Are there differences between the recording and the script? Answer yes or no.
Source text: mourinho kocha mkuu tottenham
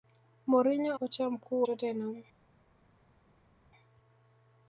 no